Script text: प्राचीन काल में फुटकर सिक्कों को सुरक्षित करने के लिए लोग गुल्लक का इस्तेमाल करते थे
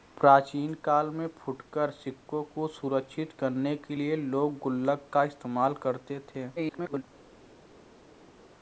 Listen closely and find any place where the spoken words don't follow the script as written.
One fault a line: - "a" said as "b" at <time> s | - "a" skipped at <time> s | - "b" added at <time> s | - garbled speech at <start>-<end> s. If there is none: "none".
- garbled speech at 6.6-7.0 s